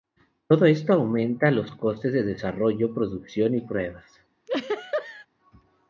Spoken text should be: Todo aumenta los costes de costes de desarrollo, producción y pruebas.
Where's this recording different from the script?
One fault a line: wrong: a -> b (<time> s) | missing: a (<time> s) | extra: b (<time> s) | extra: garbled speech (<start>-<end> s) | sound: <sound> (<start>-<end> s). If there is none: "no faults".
extra: esto (0.7 s)
missing: costes de (2.2 s)
sound: laugh (4.5-5.3 s)